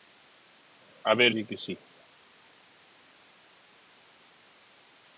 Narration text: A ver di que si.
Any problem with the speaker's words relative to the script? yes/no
no